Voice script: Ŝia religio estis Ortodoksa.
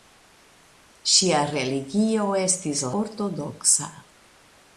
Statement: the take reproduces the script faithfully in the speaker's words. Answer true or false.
true